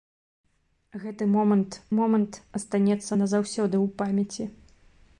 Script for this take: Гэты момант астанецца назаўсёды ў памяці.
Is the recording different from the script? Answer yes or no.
yes